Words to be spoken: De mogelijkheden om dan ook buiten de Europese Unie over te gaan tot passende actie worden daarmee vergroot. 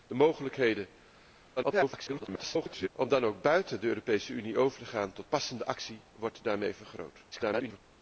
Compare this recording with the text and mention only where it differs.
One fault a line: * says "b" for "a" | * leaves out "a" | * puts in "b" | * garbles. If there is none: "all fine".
* garbles
* garbles